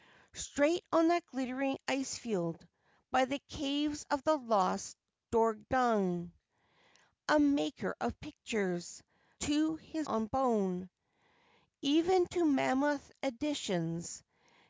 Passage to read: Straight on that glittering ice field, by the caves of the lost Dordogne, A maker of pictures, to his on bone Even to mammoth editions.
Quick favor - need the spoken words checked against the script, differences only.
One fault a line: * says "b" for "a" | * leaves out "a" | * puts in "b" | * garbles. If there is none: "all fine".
all fine